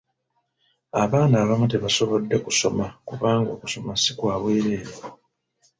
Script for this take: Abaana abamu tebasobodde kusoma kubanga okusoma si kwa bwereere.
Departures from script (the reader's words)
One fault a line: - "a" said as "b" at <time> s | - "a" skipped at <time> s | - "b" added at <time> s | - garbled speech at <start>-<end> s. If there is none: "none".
none